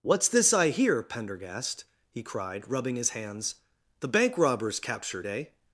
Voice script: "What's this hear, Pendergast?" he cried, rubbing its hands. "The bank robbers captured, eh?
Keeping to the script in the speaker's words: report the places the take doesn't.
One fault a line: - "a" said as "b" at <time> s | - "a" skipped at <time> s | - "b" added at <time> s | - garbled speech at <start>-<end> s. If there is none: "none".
- "I" added at 0.5 s
- "its" said as "his" at 3.0 s